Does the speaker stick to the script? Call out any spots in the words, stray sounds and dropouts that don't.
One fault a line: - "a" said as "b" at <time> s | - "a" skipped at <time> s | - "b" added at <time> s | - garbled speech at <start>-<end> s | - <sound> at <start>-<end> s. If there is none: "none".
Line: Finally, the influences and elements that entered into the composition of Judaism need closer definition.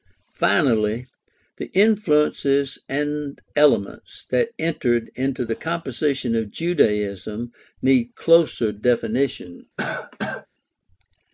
- cough at 9.8-10.5 s